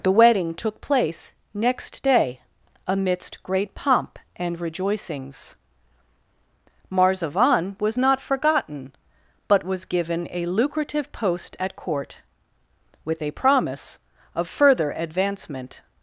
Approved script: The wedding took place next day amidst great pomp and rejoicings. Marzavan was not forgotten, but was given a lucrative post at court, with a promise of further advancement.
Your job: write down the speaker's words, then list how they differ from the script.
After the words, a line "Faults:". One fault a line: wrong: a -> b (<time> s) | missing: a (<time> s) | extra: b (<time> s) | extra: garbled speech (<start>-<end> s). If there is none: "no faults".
The wedding took place next day amidst great pomp and rejoicings. Marzavan was not forgotten, but was given a lucrative post at court, with a promise of further advancement.
Faults:
no faults